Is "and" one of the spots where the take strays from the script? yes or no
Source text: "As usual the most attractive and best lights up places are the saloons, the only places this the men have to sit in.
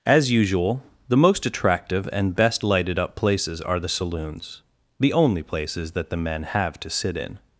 no